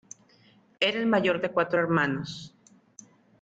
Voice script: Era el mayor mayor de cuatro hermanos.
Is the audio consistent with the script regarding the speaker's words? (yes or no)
no